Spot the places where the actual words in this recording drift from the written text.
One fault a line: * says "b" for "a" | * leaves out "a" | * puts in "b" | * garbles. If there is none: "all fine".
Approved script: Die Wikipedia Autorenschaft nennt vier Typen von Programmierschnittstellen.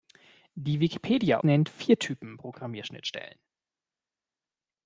* leaves out "Autorenschaft"
* leaves out "von"